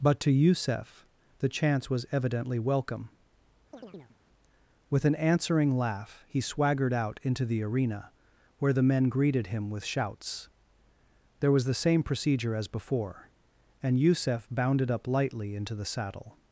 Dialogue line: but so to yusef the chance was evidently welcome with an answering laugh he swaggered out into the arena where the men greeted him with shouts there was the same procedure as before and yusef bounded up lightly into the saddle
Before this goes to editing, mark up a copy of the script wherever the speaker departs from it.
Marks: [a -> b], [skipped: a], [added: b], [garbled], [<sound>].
but [skipped: so] to yusef the chance was evidently welcome [chirp] with an answering laugh he swaggered out into the arena where the men greeted him with shouts there was the same procedure as before and yusef bounded up lightly into the saddle